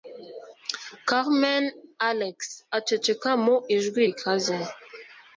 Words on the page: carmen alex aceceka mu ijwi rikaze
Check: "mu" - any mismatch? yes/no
no